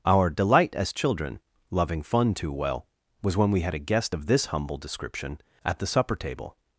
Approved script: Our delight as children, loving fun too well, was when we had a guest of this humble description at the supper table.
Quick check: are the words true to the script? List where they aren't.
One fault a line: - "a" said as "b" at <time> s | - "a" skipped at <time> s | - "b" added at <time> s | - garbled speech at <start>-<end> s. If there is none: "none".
none